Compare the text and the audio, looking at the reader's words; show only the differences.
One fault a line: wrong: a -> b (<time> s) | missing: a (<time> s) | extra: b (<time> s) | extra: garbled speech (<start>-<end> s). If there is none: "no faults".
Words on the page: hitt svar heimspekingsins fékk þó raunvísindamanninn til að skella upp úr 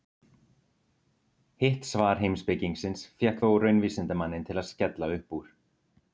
no faults